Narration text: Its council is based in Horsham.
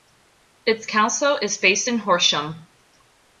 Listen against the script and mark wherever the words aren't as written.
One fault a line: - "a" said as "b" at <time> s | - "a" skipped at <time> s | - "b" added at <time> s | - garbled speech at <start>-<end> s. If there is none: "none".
none